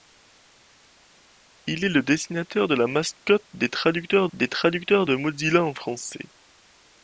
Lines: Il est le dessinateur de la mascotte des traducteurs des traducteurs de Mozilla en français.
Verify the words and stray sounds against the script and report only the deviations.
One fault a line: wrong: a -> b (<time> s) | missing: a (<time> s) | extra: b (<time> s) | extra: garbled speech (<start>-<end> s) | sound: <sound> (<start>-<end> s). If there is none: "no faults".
no faults